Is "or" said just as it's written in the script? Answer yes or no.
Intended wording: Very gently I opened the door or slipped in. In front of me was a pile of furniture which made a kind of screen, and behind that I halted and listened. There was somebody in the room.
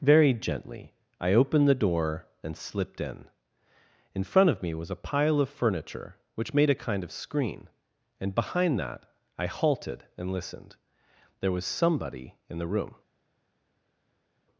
no